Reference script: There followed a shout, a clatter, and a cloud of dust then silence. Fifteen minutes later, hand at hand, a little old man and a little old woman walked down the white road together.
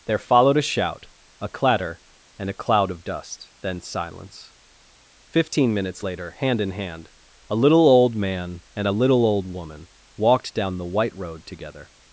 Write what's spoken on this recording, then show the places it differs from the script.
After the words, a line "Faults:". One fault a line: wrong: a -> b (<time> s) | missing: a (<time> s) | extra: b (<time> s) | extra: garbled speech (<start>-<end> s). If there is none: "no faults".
There followed a shout, a clatter, and a cloud of dust then silence. Fifteen minutes later, hand in hand, a little old man and a little old woman walked down the white road together.
Faults:
wrong: at -> in (6.6 s)